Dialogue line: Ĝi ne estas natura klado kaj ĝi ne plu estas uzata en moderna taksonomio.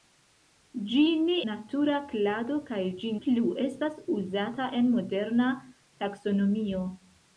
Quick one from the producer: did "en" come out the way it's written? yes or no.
yes